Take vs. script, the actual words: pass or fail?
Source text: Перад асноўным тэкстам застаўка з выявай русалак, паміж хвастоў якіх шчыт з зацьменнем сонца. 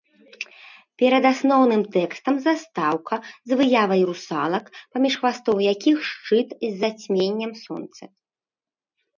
pass